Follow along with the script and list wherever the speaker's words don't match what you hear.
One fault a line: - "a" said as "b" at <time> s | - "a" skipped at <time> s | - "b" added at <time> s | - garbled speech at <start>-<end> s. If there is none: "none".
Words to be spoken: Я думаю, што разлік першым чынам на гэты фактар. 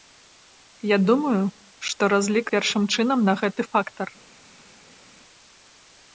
none